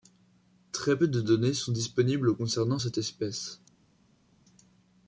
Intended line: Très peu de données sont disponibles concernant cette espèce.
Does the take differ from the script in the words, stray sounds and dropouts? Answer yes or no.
no